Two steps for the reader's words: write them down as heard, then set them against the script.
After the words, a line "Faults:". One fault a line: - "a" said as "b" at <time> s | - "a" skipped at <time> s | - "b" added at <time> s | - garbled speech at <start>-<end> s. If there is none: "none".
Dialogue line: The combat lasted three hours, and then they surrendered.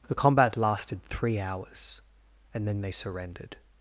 The combat lasted three hours, and then they surrendered.
Faults:
none